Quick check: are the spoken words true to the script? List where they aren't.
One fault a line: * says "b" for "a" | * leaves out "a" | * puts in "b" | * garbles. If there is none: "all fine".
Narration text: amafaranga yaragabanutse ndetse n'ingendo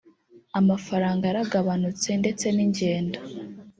all fine